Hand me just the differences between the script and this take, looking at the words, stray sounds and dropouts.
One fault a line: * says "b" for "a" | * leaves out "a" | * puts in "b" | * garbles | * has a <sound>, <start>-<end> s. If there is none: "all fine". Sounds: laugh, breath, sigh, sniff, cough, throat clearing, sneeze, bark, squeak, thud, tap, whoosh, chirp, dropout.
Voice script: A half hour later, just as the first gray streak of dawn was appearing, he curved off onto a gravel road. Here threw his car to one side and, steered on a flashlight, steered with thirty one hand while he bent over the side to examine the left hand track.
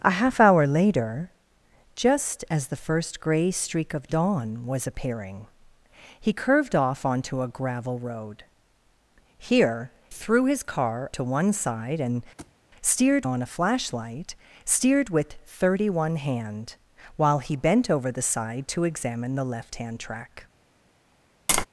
* has a thud, 12.4-12.6 s
* has a tap, 21.5-21.7 s